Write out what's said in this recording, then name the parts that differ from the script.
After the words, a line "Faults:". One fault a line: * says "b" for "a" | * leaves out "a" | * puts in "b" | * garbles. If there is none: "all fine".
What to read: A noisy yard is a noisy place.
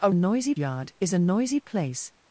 A noisy yard is a noisy place.
Faults:
all fine